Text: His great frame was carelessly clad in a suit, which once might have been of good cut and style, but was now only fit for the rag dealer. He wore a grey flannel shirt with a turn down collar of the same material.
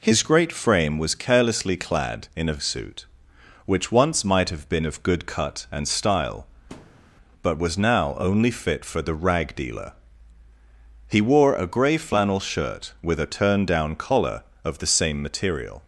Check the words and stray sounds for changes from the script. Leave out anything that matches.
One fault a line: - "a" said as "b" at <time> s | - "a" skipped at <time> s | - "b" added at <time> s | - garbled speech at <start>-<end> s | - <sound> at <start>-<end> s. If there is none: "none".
- thud at 6.7-7.1 s